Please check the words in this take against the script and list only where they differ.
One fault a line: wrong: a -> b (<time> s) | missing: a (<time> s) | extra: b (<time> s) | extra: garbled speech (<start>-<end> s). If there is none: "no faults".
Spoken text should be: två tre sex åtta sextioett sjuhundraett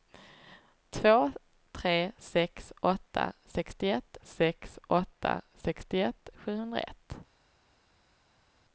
extra: sex åtta sextioett (4.2 s)